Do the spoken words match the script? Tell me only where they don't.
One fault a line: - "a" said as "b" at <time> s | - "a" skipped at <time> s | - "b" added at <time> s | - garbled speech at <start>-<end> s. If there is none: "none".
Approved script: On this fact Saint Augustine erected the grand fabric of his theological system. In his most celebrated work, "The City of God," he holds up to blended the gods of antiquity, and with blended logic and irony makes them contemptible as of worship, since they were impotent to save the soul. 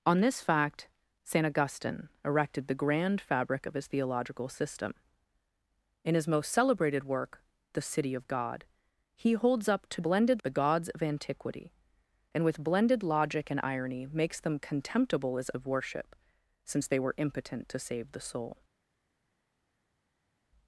none